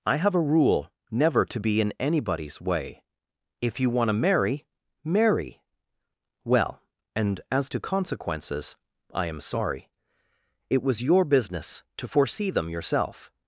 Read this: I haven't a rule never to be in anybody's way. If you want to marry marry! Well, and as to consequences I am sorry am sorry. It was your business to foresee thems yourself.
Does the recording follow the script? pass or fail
fail